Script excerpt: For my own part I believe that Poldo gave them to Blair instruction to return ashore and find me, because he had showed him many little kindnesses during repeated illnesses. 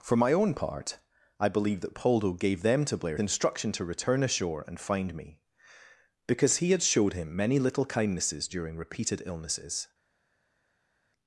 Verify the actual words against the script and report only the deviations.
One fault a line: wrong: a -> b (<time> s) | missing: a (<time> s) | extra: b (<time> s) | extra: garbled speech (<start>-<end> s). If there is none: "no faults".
no faults